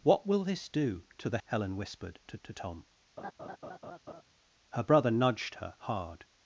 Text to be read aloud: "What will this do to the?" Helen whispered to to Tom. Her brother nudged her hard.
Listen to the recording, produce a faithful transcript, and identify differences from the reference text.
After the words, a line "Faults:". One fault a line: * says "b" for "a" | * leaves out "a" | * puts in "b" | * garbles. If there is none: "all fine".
"What will this do to the?" Helen whispered to to Tom. Her brother nudged her hard.
Faults:
all fine